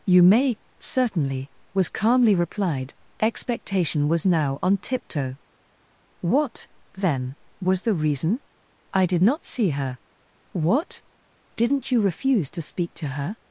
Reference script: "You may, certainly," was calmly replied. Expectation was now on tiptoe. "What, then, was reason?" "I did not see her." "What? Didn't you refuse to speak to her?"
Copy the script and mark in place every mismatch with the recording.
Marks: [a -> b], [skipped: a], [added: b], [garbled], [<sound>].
"You may, certainly," was calmly replied. Expectation was now on tiptoe. "What, then, was [added: the] reason?" "I did not see her." "What? Didn't you refuse to speak to her?"